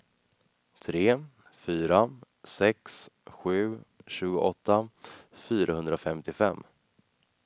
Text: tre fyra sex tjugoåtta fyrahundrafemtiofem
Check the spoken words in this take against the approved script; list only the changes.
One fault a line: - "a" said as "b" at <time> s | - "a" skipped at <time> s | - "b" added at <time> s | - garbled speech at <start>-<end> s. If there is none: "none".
- "sju" added at 3.3 s